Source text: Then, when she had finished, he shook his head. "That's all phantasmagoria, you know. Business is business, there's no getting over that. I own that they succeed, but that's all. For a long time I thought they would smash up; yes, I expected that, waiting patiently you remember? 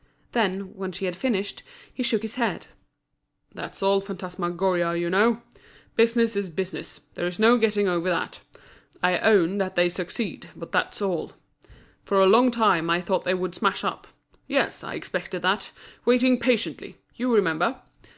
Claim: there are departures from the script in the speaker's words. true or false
false